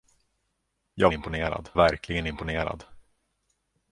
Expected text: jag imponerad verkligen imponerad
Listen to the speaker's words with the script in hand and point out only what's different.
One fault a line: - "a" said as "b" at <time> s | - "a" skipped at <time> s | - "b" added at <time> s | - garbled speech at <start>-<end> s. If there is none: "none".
none